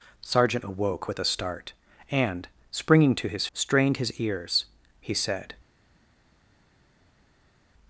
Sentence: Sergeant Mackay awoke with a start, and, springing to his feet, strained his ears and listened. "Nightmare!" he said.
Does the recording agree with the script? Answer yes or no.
no